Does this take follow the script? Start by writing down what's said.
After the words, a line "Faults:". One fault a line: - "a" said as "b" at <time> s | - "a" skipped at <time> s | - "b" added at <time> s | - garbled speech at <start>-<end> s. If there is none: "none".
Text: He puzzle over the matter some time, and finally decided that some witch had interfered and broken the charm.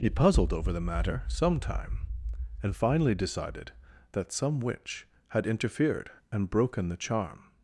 He puzzled over the matter some time, and finally decided that some witch had interfered and broken the charm.
Faults:
- "puzzle" said as "puzzled" at 0.1 s